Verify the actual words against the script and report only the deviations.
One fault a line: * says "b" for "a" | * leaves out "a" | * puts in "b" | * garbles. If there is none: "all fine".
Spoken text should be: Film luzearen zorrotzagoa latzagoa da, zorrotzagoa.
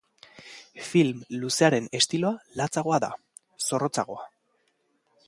* says "estiloa" for "zorrotzagoa"